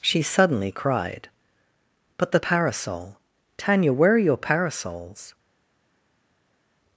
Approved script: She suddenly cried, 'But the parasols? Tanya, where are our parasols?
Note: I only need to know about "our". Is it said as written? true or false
false